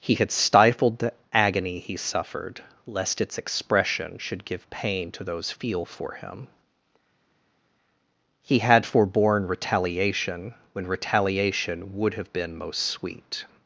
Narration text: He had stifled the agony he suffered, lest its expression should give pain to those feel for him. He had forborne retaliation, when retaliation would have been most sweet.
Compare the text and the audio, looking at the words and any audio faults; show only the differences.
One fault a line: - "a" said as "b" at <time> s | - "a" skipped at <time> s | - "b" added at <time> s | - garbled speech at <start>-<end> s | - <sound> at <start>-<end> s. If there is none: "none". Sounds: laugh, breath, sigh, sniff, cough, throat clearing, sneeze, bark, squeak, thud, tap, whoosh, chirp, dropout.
none